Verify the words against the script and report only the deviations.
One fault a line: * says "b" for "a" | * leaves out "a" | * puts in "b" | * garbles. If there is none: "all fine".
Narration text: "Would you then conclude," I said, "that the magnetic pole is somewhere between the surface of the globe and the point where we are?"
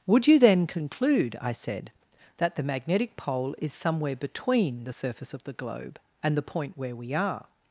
all fine